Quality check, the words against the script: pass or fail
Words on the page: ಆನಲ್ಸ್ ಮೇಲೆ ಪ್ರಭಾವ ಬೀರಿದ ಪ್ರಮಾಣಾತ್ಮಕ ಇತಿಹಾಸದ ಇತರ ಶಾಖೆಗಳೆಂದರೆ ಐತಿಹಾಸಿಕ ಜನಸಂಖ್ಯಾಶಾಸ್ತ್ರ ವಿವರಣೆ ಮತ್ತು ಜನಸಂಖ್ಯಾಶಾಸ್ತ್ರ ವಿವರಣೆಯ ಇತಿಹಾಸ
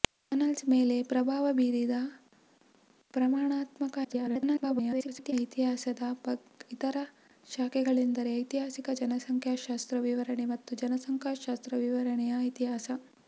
fail